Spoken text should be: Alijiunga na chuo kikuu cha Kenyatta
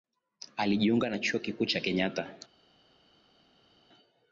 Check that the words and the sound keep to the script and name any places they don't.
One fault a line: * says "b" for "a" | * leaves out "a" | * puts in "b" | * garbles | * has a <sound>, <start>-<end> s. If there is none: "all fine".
all fine